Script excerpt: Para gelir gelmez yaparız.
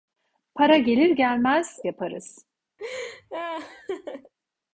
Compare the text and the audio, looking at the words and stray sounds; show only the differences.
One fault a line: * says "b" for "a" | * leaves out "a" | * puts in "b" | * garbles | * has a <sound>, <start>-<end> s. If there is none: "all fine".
* has a laugh, 2.8-4.3 s